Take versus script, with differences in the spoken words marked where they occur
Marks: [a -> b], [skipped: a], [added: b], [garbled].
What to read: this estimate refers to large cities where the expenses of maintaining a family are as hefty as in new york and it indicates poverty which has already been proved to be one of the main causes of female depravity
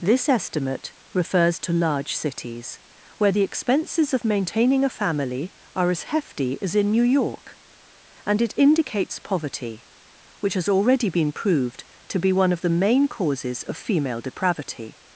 this estimate refers to large cities where the expenses of maintaining a family are as hefty as in new york and it indicates poverty which has already been proved to be one of the main causes of female depravity